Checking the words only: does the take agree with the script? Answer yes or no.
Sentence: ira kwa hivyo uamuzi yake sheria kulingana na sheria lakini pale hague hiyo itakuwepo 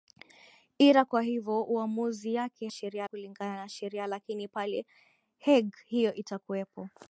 yes